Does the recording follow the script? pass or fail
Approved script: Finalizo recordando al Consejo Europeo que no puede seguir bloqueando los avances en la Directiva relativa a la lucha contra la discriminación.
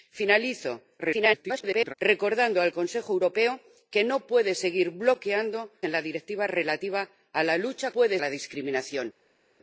fail